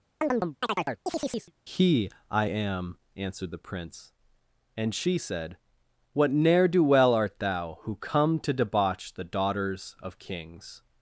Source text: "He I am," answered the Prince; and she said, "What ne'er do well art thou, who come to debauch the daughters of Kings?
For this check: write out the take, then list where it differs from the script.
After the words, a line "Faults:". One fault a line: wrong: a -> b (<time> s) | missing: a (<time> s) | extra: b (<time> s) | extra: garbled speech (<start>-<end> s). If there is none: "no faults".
"He I am," answered the Prince; and she said, "What ne'er do well art thou, who come to debauch the daughters of Kings?
Faults:
no faults